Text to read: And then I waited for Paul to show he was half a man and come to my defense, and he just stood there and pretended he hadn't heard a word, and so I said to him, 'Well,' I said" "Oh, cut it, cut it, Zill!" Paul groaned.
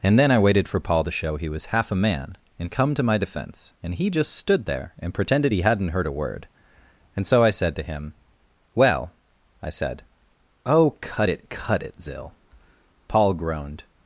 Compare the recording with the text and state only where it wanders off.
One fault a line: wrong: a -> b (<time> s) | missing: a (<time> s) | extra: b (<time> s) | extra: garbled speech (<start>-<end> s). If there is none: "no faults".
no faults